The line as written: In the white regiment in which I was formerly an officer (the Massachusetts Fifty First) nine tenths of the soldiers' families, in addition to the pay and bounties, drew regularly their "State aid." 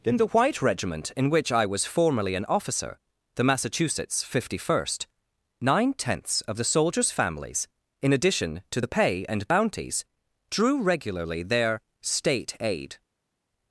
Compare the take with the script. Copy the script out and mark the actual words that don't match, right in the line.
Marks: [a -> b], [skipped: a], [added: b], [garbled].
In the white regiment in which I was formerly an officer (the Massachusetts Fifty First) nine tenths of the soldiers' families, in addition to the pay and bounties, drew regularly their "State aid."